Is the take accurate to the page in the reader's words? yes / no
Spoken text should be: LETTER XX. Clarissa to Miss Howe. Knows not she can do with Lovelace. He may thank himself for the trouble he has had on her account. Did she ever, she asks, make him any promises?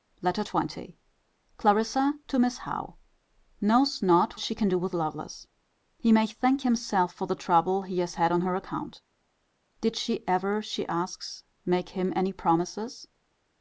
yes